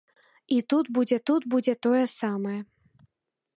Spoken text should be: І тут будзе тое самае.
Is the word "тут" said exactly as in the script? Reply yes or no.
yes